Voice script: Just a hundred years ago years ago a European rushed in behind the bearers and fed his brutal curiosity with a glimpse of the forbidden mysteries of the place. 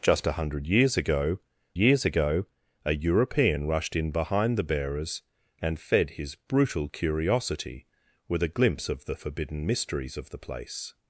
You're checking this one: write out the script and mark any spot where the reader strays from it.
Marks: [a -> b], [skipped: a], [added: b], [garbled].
Just a hundred years ago years ago a European rushed in behind the bearers and fed his brutal curiosity with a glimpse of the forbidden mysteries of the place.